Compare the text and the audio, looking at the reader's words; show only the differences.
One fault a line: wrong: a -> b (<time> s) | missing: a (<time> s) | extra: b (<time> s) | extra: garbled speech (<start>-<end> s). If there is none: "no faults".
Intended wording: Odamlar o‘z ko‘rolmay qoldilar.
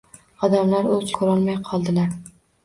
no faults